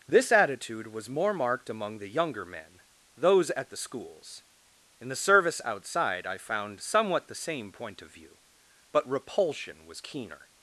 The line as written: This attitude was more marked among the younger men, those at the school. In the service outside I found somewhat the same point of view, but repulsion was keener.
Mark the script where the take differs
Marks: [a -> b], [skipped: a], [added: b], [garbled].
This attitude was more marked among the younger men, those at the [school. -> schools] In the service outside I found somewhat the same point of view, but repulsion was keener.